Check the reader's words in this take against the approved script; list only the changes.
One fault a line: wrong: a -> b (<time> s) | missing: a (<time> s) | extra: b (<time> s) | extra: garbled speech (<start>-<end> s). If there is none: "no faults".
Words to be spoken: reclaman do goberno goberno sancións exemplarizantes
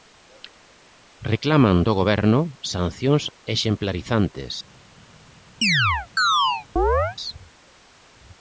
missing: goberno (2.4 s)